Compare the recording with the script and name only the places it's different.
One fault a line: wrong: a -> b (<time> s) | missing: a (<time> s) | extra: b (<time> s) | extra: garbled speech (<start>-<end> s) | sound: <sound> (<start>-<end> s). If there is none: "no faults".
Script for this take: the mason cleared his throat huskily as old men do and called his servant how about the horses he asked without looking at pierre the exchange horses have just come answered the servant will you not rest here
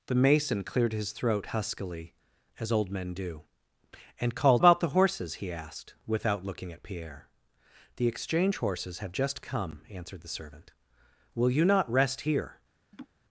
missing: his servant how (4.6 s)
sound: laugh (12.9-13.1 s)